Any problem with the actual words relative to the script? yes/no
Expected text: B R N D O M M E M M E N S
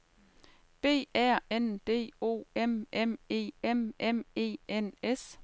no